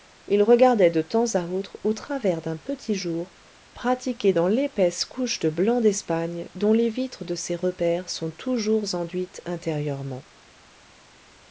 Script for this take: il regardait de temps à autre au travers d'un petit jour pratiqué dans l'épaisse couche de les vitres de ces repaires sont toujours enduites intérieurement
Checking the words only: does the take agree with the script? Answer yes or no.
no